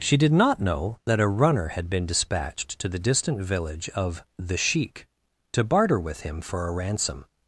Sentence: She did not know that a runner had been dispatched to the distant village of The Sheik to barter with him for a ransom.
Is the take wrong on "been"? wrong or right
right